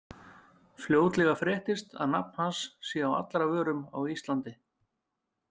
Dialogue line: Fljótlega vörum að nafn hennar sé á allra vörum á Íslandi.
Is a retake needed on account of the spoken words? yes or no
yes